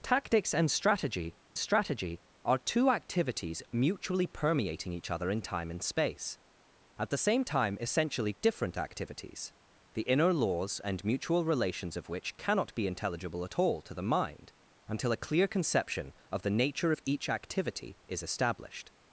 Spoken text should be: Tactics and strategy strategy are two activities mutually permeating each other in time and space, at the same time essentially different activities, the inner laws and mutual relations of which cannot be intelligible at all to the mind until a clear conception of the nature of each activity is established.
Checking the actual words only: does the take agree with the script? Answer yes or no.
yes